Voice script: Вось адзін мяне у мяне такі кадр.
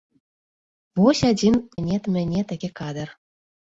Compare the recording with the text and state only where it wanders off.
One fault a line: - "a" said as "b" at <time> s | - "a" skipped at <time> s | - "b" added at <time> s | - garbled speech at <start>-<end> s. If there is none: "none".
none